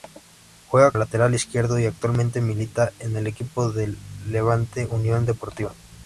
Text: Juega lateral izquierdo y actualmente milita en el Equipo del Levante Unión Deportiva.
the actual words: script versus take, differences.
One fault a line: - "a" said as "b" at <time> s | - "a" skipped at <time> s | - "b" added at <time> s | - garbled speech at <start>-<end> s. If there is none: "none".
none